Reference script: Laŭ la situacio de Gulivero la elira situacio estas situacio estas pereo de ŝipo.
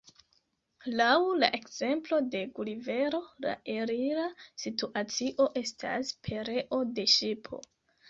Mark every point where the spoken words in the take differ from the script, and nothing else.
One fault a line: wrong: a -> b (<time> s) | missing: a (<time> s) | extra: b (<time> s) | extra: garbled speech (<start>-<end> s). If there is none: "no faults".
wrong: situacio -> ekzemplo (1.6 s)
missing: situacio estas (6.1 s)